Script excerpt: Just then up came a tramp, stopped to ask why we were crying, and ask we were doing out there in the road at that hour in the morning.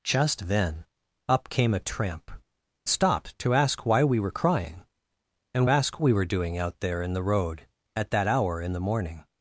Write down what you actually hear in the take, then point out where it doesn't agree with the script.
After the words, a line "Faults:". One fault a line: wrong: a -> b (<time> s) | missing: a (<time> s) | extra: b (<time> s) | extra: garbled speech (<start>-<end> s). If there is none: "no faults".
Just then up came a tramp, stopped to ask why we were crying, and ask we were doing out there in the road at that hour in the morning.
Faults:
no faults